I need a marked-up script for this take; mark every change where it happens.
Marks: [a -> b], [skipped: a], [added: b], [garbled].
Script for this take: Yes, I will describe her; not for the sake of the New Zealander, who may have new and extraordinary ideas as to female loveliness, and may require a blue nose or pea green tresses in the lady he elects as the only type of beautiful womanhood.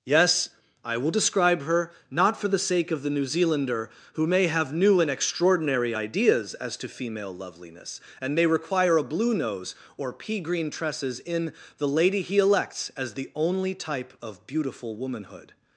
Yes, I will describe her; not for the sake of the New Zealander, who may have new and extraordinary ideas as to female loveliness, and may require a blue nose or pea green tresses in the lady he elects as the only type of beautiful womanhood.